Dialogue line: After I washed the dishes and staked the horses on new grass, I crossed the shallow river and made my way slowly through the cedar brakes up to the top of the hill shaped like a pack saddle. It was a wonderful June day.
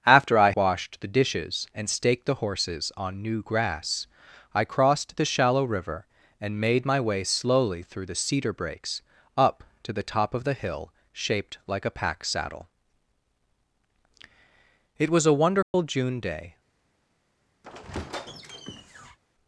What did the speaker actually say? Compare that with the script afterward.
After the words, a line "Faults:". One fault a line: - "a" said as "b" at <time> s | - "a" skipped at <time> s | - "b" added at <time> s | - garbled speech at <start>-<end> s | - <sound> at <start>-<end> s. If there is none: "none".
After I washed the dishes and staked the horses on new grass, I crossed the shallow river and made my way slowly through the cedar brakes up to the top of the hill shaped like a pack saddle. It was a wonderful June day.
Faults:
- dropout at 15.6-15.7 s
- squeak at 17.6-19.2 s